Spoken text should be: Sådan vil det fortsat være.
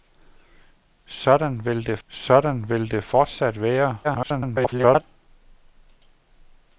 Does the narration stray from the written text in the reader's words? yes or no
yes